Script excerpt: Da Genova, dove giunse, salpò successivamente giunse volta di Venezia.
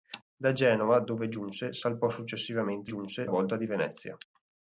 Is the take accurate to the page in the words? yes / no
yes